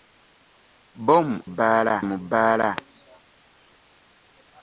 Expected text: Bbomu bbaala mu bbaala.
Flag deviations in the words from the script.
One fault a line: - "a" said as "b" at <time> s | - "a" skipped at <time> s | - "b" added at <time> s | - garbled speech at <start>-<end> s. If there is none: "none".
none